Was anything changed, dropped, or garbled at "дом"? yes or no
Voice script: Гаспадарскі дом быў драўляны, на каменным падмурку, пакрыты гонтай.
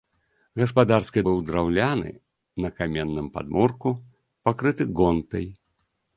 yes